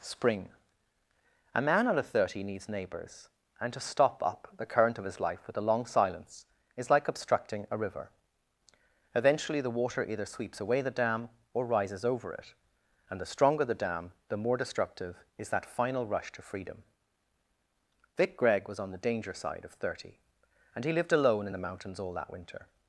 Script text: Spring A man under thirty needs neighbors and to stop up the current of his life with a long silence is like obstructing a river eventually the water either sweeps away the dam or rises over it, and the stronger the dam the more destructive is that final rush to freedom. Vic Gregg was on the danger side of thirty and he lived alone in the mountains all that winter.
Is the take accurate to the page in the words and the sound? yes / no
yes